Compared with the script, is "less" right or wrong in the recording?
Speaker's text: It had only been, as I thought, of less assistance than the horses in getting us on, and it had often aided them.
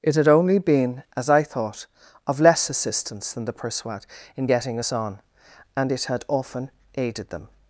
right